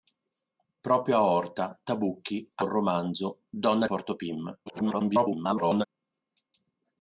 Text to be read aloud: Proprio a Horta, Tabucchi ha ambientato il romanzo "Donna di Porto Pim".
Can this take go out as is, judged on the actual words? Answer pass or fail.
fail